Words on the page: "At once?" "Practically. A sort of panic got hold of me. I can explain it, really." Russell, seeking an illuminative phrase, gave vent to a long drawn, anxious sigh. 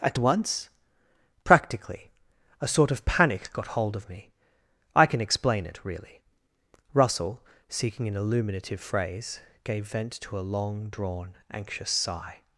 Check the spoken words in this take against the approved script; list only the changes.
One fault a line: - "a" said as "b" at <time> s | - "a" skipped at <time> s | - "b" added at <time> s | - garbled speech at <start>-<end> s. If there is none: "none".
none